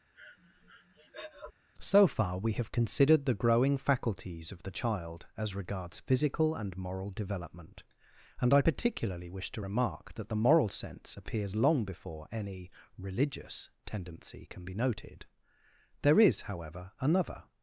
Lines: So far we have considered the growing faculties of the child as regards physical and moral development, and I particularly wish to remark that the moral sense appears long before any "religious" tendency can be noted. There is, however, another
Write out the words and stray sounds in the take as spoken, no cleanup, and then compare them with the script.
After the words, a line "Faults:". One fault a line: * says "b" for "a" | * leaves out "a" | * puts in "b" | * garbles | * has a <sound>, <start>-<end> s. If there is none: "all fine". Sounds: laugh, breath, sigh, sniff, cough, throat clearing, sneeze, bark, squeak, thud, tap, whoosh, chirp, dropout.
So far we have considered the growing faculties of the child as regards physical and moral development, and I particularly wish to remark that the moral sense appears long before any "religious" tendency can be noted. There is, however, another
Faults:
* has a breath, 0.1-1.5 s